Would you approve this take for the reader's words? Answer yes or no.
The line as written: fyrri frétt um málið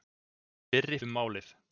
no